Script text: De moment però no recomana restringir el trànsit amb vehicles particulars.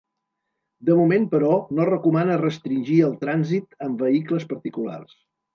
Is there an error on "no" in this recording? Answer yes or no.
no